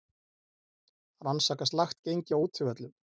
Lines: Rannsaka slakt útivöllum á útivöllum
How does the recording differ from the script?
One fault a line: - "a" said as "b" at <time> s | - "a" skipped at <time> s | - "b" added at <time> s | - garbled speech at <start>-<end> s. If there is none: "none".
- "útivöllum" said as "gengi" at 2.0 s